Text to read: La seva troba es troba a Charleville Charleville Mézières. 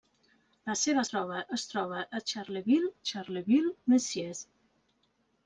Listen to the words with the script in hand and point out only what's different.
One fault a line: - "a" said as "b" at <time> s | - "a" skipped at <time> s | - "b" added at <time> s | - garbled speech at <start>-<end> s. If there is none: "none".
none